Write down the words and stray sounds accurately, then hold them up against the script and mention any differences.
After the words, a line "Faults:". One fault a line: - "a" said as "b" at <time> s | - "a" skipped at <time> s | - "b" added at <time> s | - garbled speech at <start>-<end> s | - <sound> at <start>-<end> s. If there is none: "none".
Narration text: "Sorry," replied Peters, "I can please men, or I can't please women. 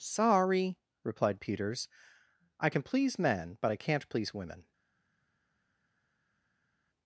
"Sorry," replied Peters, "I can please men, but I can't please women.
Faults:
- "or" said as "but" at 3.6 s